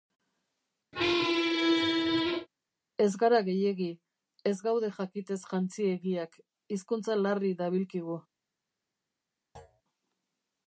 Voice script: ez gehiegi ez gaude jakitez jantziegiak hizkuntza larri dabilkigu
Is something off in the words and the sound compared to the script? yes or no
yes